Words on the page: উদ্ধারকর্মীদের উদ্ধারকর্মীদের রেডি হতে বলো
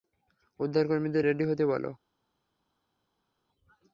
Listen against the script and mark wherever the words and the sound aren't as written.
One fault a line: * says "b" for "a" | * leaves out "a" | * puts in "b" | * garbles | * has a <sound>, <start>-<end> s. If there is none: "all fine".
* leaves out "উদ্ধারকর্মীদের"